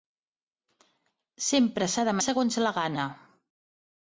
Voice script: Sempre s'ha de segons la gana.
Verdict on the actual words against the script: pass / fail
pass